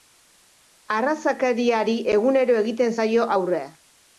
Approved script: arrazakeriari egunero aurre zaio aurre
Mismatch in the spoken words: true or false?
true